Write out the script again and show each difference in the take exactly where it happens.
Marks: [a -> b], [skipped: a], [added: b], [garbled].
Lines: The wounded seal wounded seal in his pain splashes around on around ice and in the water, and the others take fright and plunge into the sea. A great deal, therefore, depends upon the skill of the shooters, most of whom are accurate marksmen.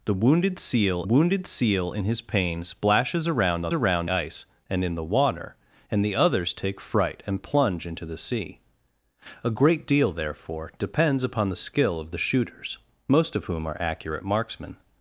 The wounded seal wounded seal in his pain splashes around on around ice and in the water, and the others take fright and plunge into the sea. A great deal, therefore, depends upon the skill of the shooters, most of whom are accurate marksmen.